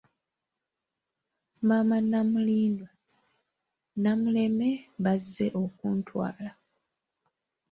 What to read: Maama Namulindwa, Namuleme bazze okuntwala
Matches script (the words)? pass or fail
pass